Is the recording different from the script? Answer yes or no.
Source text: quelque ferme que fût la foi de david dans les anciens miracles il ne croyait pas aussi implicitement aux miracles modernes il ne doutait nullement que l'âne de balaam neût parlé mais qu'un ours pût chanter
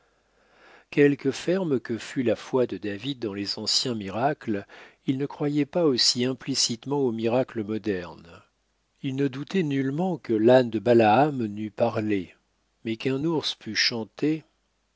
no